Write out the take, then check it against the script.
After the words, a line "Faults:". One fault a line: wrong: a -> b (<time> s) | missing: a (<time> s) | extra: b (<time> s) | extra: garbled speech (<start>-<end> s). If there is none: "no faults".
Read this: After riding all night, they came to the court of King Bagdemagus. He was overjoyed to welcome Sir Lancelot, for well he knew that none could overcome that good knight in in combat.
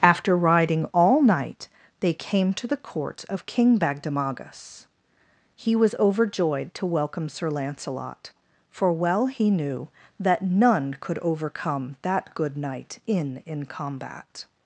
After riding all night, they came to the court of King Bagdemagus. He was overjoyed to welcome Sir Lancelot, for well he knew that none could overcome that good knight in in combat.
Faults:
no faults